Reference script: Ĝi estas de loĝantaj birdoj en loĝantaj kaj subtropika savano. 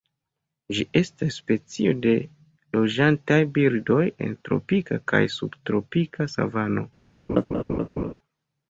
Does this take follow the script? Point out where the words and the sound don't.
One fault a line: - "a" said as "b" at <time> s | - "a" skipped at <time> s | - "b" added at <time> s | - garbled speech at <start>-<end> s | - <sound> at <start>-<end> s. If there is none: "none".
- "specio" added at 1.4 s
- "loĝantaj" said as "tropika" at 4.5 s
- laugh at 7.3-8.1 s